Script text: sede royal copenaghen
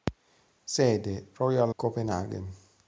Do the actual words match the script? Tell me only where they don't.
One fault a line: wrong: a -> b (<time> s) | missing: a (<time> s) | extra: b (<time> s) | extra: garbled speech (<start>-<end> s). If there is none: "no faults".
no faults